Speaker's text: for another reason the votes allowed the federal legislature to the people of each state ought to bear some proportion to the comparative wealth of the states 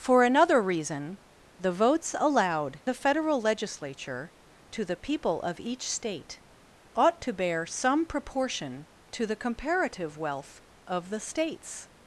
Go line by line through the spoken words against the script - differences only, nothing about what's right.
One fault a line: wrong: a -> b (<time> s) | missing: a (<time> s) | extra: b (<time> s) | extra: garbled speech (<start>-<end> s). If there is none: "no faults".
no faults